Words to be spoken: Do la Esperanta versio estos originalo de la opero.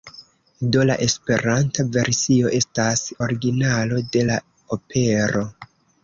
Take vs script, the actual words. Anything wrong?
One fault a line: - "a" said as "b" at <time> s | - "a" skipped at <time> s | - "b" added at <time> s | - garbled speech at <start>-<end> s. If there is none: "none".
- "estos" said as "estas" at 2.6 s